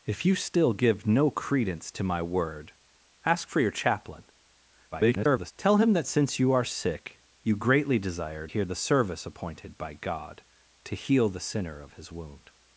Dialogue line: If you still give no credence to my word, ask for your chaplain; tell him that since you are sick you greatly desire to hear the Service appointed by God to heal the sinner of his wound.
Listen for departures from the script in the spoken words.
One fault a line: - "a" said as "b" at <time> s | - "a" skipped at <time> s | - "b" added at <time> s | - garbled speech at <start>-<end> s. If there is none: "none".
- garbled speech at 4.9-5.5 s
- "to" skipped at 8.5 s